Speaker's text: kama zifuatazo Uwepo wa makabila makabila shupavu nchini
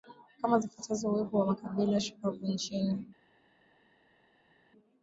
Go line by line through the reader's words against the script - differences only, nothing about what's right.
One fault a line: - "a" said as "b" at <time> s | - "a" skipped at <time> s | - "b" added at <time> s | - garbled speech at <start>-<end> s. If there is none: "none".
- "makabila" skipped at 2.0 s